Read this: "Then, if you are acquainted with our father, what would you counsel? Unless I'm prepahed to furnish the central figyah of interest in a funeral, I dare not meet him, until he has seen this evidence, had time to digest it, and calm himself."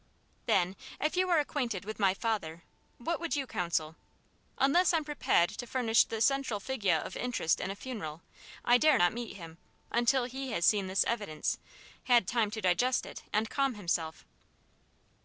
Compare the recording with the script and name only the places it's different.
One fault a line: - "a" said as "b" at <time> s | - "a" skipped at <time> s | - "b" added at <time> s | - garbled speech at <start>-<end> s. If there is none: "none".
- "our" said as "my" at 2.0 s